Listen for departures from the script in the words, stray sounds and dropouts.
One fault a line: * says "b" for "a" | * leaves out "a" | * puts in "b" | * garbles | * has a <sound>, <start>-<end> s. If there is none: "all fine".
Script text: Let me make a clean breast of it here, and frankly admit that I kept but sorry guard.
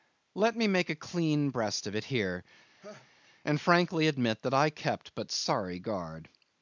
* has a laugh, 2.8-3.1 s